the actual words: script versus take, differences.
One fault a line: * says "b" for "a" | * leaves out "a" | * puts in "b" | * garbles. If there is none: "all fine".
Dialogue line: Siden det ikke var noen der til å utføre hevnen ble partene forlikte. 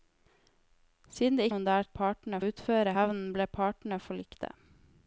* leaves out "ikke var"
* says "partene" for "til"